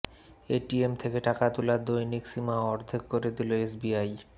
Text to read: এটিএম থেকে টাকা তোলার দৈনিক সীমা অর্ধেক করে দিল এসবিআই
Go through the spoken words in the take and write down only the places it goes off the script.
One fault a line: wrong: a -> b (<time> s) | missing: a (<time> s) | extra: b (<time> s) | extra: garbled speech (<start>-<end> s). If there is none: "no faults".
no faults